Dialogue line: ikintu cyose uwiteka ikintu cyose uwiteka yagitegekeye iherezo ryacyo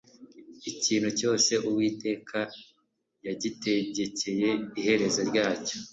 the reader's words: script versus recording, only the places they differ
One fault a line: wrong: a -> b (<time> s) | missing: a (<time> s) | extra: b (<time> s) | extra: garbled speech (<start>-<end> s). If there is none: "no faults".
missing: ikintu cyose uwiteka (2.4 s)